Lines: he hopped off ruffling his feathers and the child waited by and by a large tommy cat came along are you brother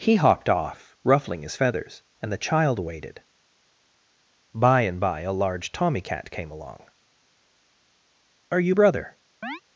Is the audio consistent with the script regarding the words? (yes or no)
yes